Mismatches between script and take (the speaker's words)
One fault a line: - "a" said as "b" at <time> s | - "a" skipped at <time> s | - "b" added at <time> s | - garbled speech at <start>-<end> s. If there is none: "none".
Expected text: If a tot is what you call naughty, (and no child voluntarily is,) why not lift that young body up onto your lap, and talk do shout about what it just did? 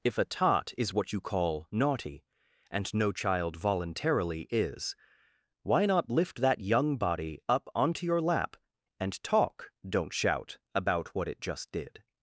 - "do" said as "don't" at 9.8 s